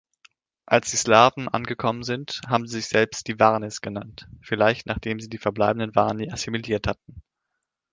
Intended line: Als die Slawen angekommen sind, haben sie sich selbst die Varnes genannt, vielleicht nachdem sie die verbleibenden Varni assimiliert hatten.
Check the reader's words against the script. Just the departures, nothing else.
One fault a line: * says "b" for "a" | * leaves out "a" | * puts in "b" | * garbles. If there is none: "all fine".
all fine